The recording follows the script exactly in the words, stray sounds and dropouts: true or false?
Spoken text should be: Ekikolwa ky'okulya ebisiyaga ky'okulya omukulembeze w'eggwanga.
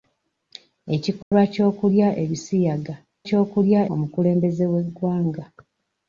false